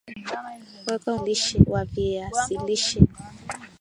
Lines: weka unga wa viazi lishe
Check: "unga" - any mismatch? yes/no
yes